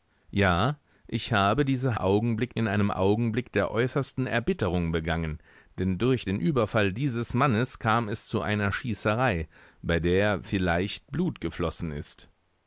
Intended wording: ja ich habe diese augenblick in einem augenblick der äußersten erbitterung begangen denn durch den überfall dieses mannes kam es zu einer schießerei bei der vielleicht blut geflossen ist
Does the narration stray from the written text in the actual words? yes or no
no